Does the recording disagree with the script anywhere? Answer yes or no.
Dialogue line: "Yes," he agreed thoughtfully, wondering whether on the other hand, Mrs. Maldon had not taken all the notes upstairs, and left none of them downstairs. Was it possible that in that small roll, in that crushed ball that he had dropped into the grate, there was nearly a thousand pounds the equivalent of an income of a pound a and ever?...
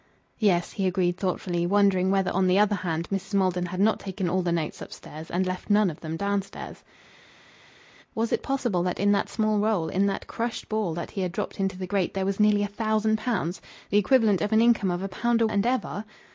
no